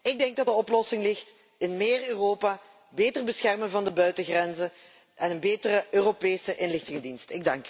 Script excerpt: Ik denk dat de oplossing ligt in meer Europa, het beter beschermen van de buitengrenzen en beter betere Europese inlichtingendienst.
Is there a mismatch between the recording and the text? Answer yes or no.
yes